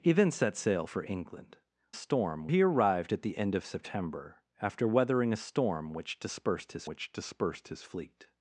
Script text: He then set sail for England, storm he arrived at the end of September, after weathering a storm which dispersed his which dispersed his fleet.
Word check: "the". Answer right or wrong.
right